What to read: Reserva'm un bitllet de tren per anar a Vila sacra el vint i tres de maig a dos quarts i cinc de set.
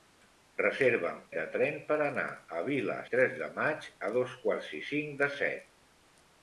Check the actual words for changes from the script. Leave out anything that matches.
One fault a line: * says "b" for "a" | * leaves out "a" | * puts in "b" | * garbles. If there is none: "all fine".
* leaves out "un bitllet"
* leaves out "sacra el vint"